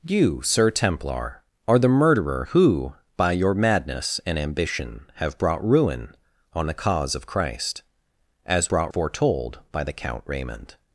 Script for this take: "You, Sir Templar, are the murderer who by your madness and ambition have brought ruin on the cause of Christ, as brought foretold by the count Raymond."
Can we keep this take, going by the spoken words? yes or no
yes